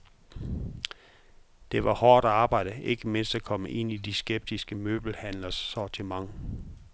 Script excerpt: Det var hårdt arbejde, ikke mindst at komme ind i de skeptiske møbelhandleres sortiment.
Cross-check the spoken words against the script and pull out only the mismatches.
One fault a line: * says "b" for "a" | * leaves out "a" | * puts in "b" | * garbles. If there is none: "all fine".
all fine